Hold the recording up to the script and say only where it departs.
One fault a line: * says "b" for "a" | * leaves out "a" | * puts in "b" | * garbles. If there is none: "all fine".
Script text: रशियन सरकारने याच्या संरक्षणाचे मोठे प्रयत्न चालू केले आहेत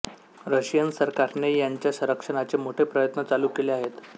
all fine